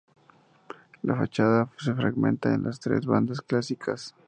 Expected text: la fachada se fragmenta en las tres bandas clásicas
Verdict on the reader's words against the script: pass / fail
pass